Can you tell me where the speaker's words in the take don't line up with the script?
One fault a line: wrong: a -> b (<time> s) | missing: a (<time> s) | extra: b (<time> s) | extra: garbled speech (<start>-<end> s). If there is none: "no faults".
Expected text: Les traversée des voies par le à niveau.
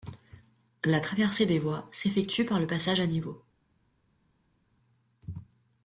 wrong: Les -> La (0.8 s)
extra: s'effectue (1.9 s)
extra: passage (2.6 s)